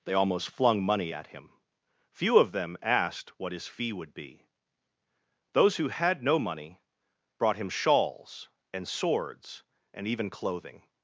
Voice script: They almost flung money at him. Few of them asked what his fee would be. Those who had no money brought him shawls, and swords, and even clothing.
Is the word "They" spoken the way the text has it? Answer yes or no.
yes